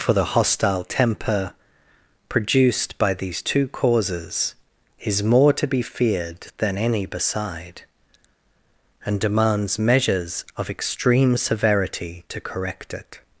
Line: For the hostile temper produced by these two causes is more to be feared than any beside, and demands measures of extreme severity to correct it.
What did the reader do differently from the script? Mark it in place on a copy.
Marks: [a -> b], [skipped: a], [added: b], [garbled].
For the hostile temper produced by these two causes is more to be feared than any beside, and demands measures of extreme severity to correct it.